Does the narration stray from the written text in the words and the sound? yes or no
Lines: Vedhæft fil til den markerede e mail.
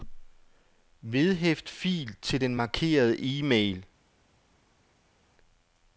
no